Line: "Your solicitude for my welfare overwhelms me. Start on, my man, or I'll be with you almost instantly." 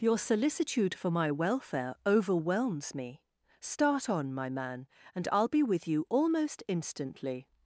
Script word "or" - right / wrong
wrong